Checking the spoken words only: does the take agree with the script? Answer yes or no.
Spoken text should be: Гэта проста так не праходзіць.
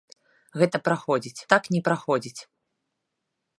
no